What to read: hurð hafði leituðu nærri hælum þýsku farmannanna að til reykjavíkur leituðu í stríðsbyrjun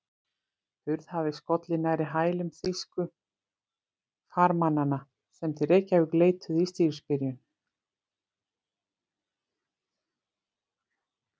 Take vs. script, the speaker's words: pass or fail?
fail